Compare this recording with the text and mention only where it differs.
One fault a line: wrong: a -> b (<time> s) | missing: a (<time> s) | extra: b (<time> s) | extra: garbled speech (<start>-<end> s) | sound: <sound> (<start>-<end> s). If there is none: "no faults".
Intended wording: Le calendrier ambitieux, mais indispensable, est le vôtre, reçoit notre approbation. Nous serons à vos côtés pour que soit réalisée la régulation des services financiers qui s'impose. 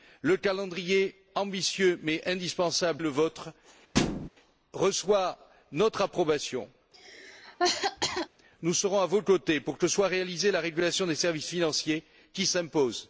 sound: thud (3.9-4.3 s)
sound: cough (6.9-8.3 s)